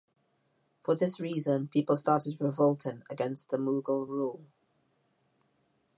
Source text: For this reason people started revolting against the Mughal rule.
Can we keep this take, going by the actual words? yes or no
yes